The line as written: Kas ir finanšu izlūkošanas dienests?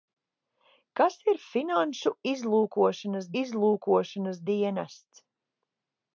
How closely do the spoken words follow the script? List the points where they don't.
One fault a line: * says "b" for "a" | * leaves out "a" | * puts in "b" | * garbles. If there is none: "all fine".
* puts in "izlūkošanas"